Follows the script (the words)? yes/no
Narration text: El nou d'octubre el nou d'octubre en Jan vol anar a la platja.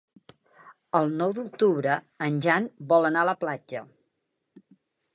no